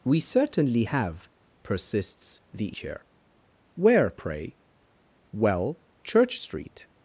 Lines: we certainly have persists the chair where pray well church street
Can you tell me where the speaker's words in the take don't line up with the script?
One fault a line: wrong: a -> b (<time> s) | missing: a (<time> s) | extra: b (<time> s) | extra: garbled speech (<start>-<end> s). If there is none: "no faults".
no faults